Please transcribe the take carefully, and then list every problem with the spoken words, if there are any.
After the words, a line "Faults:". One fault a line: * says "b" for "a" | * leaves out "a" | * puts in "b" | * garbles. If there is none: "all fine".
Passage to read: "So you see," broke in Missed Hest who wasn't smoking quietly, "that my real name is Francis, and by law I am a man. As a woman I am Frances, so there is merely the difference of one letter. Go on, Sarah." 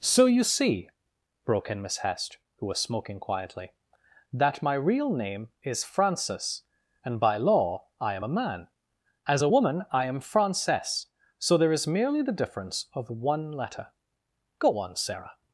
"So you see," broke in Miss Hest who was smoking quietly, "that my real name is Francis, and by law I am a man. As a woman I am Frances, so there is merely the difference of one letter. Go on, Sarah."
Faults:
* says "Miss" for "Missed"
* says "was" for "wasn't"